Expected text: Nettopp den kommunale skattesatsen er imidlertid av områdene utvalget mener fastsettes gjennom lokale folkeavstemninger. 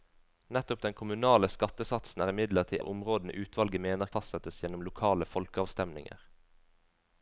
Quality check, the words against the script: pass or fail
pass